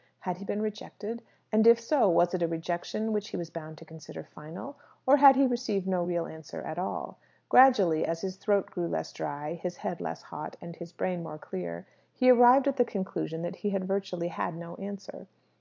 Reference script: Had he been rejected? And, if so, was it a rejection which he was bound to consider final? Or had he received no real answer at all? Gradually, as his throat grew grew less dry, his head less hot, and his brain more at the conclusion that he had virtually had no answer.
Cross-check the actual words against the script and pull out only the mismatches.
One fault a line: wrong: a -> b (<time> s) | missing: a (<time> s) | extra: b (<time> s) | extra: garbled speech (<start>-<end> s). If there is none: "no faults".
missing: grew (8.9 s)
extra: clear he arrived (11.4 s)